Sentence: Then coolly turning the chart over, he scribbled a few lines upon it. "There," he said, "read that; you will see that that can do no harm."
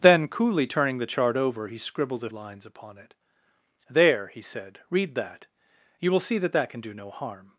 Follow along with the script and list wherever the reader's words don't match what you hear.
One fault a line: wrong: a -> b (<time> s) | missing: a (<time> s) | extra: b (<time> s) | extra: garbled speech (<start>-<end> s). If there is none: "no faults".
missing: few (2.3 s)